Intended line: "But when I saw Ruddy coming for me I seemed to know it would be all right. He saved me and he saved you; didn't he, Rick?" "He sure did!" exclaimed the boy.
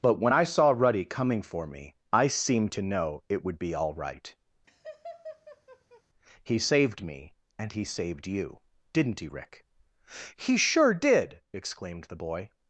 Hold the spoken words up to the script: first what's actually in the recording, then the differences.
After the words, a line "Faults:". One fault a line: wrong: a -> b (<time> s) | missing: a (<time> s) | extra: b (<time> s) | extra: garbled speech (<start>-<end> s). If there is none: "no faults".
"But when I saw Ruddy coming for me I seemed to know it would be all right. He saved me and he saved you; didn't he, Rick?" "He sure did!" exclaimed the boy.
Faults:
no faults